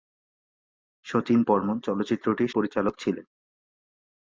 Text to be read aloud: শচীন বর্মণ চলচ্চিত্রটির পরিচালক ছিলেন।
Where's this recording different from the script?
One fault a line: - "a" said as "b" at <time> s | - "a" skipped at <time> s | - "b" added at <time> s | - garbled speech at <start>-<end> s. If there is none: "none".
none